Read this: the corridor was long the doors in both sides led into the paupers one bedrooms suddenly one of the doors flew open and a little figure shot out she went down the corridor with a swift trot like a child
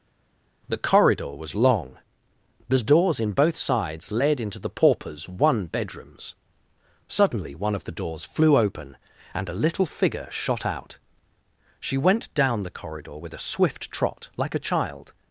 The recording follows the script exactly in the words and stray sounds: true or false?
true